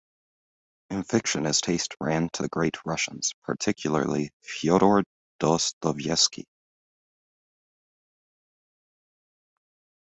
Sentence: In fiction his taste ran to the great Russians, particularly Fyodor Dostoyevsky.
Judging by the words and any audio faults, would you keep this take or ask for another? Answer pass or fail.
pass